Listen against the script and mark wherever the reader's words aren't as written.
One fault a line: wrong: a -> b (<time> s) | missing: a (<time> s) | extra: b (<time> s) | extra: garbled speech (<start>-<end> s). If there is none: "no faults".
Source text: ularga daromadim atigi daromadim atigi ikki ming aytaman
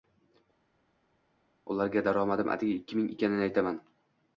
missing: daromadim atigi (2.7 s)
extra: ekanini (3.1 s)